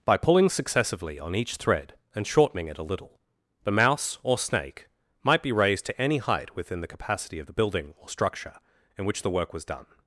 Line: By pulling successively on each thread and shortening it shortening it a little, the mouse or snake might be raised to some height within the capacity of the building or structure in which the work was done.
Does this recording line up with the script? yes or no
no